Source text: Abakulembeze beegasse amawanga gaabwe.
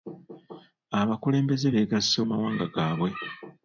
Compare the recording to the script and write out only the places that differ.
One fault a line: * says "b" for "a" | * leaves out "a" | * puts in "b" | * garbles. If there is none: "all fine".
all fine